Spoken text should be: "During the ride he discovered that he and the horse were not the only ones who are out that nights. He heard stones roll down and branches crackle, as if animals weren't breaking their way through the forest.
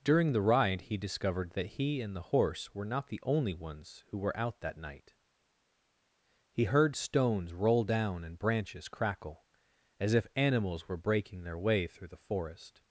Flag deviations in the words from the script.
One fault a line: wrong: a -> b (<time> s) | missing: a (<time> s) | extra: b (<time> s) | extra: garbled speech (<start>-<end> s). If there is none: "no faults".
wrong: are -> were (4.2 s)
wrong: nights -> night (4.8 s)
wrong: weren't -> were (10.9 s)